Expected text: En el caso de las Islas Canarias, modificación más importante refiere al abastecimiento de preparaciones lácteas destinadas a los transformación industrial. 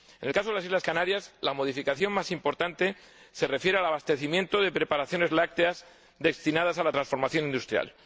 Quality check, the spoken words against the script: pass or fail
fail